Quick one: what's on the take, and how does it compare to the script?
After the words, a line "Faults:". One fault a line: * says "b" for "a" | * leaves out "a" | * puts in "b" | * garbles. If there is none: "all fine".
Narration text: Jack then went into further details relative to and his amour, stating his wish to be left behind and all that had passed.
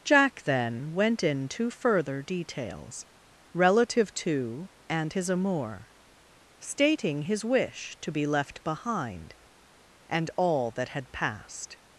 Jack then went into further details relative to and his amour, stating his wish to be left behind and all that had passed.
Faults:
all fine